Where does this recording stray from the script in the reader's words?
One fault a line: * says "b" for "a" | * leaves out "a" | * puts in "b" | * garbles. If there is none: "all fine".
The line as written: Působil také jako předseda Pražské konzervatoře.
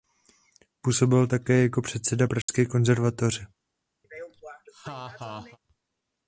all fine